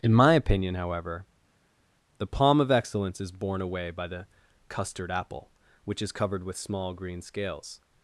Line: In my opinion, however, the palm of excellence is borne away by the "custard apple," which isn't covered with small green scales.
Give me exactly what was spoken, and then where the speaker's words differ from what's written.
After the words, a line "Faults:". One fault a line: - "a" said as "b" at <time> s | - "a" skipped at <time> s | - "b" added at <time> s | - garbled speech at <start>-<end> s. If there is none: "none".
In my opinion, however, the palm of excellence is borne away by the "custard apple," which is covered with small green scales.
Faults:
- "isn't" said as "is" at 6.0 s